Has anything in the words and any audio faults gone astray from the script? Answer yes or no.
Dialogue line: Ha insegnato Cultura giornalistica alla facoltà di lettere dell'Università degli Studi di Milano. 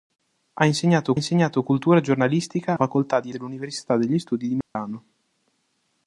yes